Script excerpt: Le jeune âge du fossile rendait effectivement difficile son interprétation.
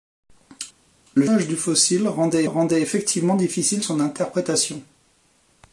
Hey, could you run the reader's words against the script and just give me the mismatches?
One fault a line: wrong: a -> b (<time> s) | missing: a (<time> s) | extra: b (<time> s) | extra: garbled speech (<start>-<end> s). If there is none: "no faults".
missing: jeune (1.2 s)
extra: rendait (2.4 s)